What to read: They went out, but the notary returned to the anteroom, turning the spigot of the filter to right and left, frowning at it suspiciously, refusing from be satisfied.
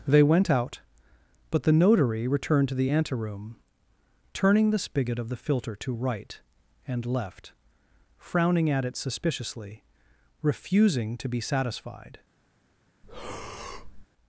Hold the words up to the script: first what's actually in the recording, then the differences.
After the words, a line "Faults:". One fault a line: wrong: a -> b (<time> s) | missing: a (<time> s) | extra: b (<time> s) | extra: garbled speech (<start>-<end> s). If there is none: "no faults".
They went out, but the notary returned to the anteroom, turning the spigot of the filter to right and left, frowning at it suspiciously, refusing to be satisfied.
Faults:
wrong: from -> to (11.2 s)